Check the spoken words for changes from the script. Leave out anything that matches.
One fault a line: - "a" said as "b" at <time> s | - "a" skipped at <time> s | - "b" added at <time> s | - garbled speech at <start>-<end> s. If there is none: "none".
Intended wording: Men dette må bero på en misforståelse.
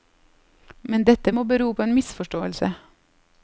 none